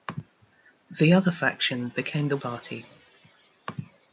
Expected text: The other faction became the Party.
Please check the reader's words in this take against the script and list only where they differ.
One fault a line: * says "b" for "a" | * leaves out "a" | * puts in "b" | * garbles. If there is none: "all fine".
all fine